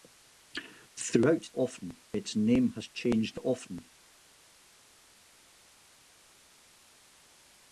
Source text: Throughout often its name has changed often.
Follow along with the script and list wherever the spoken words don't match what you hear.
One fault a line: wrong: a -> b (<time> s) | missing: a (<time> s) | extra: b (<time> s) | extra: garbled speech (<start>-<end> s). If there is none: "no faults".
no faults